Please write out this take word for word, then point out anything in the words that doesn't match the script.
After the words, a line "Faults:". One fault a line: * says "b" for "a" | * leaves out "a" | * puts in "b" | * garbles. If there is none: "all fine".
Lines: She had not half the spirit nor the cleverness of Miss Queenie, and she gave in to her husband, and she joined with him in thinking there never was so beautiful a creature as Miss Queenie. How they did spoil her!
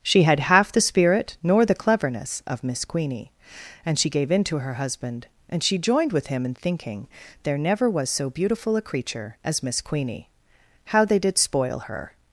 She had half the spirit nor the cleverness of Miss Queenie, and she gave in to her husband, and she joined with him in thinking there never was so beautiful a creature as Miss Queenie. How they did spoil her!
Faults:
* leaves out "not"